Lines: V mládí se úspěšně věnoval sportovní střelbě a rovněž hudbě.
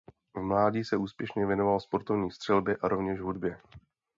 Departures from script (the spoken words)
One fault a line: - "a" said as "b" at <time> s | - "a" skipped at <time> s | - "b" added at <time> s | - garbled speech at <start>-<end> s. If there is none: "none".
none